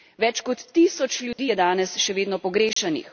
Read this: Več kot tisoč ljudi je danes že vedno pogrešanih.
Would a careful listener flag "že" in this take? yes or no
yes